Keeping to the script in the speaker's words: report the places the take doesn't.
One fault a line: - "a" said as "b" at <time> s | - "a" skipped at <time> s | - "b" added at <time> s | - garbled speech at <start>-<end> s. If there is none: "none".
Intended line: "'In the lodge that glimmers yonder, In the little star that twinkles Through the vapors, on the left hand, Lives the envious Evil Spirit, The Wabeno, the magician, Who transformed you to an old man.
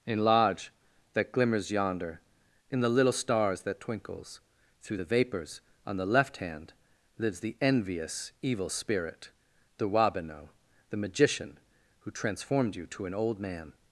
- "the" skipped at 0.2 s
- "star" said as "stars" at 3.1 s